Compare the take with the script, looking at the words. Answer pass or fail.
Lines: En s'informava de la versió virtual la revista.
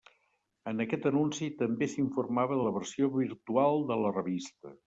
fail